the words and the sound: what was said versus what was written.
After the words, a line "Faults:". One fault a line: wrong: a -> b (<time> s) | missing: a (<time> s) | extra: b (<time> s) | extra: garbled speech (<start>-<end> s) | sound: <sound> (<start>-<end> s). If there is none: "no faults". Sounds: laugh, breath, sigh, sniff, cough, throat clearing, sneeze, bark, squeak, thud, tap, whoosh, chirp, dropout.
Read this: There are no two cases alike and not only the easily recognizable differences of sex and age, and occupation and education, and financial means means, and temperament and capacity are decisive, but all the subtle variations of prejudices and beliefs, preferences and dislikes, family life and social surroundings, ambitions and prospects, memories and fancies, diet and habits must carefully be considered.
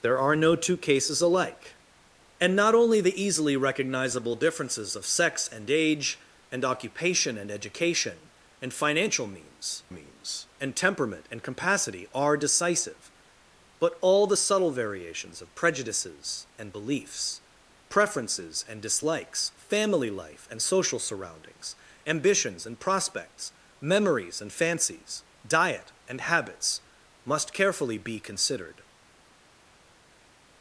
There are no two cases alike and not only the easily recognizable differences of sex and age, and occupation and education, and financial means means, and temperament and capacity are decisive, but all the subtle variations of prejudices and beliefs, preferences and dislikes, family life and social surroundings, ambitions and prospects, memories and fancies, diet and habits must carefully be considered.
Faults:
no faults